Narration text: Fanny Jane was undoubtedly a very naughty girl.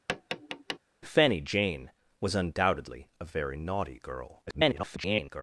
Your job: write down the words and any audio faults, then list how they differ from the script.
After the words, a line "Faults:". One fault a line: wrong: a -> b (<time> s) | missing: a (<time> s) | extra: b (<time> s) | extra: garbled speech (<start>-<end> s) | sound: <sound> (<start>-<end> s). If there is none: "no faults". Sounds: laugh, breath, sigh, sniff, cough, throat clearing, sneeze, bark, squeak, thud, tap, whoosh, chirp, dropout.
Fanny Jane was undoubtedly a very naughty girl. [garbled]
Faults:
sound: tap (0.1-0.8 s)
extra: garbled speech (4.5-5.4 s)